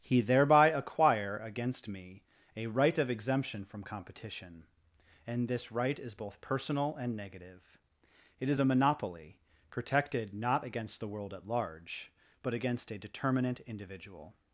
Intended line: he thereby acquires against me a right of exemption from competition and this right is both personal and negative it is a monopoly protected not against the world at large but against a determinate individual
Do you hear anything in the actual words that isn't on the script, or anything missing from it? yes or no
yes